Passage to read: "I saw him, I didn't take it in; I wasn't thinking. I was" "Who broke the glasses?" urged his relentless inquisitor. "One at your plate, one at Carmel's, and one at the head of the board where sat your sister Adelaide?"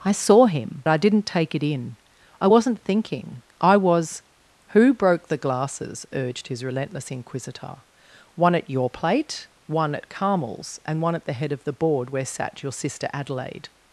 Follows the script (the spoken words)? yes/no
yes